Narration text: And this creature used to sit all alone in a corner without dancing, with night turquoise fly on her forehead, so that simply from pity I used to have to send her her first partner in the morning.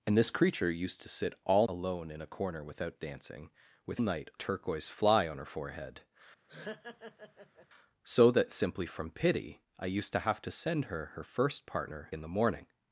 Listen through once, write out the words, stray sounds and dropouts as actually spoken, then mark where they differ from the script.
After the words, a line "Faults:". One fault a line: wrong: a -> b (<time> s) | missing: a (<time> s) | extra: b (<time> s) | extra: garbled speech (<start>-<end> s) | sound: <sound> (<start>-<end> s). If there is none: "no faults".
And this creature used to sit all alone in a corner without dancing, with night turquoise fly on her forehead, so that simply from pity I used to have to send her her first partner in the morning.
Faults:
sound: laugh (6.5-7.7 s)